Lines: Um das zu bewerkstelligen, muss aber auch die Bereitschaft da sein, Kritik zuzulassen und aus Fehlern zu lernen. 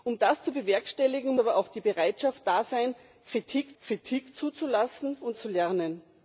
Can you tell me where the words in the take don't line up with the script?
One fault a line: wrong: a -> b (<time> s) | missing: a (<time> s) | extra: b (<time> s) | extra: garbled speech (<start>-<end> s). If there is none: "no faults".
missing: muss (1.4 s)
extra: Kritik (3.8 s)
missing: aus Fehlern (5.4 s)